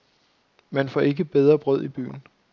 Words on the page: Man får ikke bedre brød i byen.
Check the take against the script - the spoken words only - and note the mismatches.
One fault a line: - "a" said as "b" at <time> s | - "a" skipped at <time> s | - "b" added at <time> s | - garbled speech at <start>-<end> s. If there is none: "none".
none